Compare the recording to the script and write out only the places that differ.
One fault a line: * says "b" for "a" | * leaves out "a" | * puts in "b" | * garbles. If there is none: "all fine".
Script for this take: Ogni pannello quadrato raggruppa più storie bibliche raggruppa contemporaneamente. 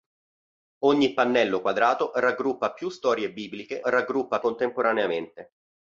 all fine